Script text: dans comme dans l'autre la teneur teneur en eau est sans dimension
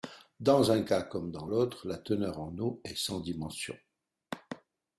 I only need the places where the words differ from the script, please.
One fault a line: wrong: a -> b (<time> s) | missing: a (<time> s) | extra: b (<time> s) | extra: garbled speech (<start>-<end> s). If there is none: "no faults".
extra: un cas (0.7 s)
missing: teneur (2.4 s)